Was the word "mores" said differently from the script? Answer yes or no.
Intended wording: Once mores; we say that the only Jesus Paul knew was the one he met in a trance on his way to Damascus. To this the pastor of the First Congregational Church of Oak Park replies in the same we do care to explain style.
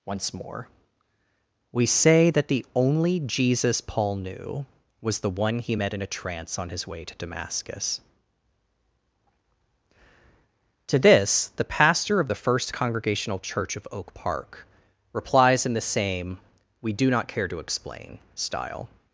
yes